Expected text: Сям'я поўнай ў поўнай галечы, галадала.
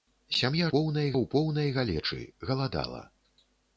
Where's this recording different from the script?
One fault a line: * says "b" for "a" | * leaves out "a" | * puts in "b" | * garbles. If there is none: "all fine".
all fine